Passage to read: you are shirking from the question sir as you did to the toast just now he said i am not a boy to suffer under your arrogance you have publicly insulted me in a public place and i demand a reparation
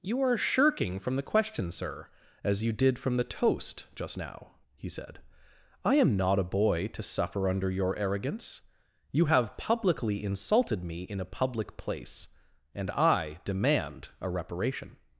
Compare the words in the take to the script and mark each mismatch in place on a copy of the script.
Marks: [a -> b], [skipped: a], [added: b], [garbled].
you are shirking from the question sir as you did [to -> from] the toast just now he said i am not a boy to suffer under your arrogance you have publicly insulted me in a public place and i demand a reparation